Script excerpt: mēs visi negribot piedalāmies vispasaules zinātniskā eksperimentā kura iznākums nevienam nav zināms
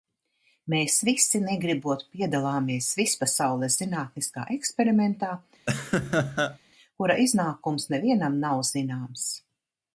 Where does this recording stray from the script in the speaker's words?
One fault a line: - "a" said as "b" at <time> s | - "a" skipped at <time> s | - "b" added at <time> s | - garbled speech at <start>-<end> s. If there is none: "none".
none